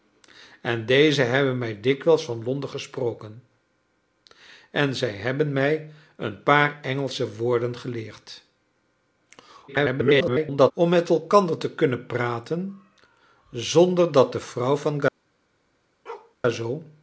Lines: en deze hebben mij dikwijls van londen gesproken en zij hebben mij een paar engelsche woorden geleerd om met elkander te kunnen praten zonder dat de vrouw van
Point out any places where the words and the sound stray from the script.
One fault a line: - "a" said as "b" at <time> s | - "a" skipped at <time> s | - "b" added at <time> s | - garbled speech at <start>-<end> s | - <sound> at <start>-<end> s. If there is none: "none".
- garbled speech at 9.7-10.7 s
- bark at 16.1-16.4 s